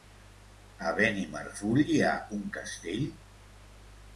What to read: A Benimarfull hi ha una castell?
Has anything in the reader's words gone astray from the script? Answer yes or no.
yes